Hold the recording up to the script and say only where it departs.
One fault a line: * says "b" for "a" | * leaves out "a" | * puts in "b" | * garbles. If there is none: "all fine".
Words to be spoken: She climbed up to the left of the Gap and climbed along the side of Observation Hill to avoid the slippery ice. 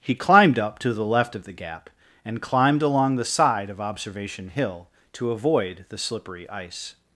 * says "He" for "She"